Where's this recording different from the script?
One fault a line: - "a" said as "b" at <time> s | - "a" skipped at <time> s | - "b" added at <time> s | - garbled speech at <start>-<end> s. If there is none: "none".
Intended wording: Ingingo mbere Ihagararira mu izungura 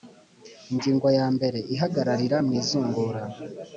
- "ya" added at 1.2 s